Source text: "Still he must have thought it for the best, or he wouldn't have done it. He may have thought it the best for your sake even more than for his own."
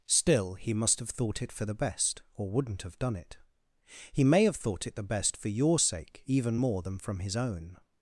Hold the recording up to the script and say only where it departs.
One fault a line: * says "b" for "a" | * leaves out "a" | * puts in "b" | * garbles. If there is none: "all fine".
* leaves out "he"
* says "from" for "for"